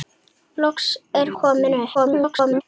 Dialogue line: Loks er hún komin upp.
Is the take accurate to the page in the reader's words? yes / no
no